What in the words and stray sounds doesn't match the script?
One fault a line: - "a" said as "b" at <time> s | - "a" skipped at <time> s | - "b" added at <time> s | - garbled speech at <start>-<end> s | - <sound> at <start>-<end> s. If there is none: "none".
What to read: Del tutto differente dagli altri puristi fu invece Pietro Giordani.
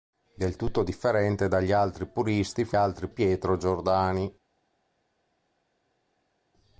- "invece" said as "altri" at 2.7 s